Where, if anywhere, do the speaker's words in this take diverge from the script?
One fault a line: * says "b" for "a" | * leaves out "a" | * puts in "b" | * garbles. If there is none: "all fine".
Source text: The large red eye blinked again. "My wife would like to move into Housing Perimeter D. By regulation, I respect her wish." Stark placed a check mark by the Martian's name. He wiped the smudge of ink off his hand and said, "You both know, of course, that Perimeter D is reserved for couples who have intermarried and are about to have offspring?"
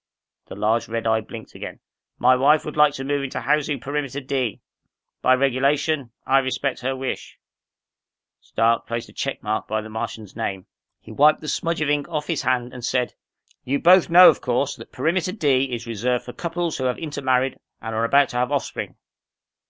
all fine